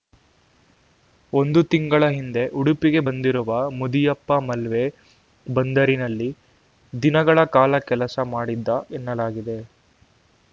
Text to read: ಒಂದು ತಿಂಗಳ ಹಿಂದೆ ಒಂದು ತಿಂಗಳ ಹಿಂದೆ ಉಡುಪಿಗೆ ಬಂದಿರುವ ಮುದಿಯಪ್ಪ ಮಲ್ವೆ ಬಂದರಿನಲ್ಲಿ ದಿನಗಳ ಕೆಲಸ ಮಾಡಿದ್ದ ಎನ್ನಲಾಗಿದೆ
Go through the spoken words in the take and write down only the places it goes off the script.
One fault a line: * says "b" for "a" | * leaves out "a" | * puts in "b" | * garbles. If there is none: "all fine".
* leaves out "ಒಂದು ತಿಂಗಳ ಹಿಂದೆ"
* puts in "ಕಾಲ"